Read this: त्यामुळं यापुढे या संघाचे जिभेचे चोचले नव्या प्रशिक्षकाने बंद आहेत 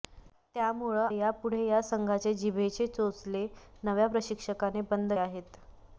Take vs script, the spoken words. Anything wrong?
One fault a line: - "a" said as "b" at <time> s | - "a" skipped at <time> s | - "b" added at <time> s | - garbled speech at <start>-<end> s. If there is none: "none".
none